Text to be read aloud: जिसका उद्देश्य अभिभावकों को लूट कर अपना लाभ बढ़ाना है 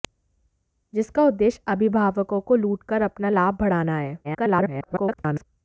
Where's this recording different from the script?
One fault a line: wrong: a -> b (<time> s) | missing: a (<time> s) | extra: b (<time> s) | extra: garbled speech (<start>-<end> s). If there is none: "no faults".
extra: garbled speech (4.2-5.4 s)